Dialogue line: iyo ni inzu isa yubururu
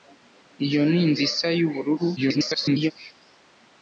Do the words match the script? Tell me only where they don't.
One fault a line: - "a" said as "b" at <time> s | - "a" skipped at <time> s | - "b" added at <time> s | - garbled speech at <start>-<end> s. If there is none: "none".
- garbled speech at 2.2-2.9 s